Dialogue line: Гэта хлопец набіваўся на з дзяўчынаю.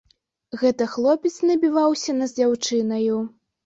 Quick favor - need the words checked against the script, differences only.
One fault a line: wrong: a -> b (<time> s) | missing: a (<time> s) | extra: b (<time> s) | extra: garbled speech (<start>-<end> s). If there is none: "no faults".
no faults